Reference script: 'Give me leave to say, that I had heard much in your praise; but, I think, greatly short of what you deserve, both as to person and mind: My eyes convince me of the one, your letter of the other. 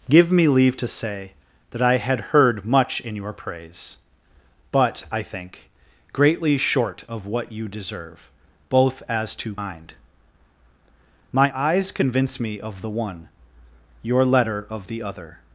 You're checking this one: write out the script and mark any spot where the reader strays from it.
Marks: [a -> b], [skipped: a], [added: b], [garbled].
'Give me leave to say, that I had heard much in your praise; but, I think, greatly short of what you deserve, both as to [skipped: person and] mind: My eyes convince me of the one, your letter of the other.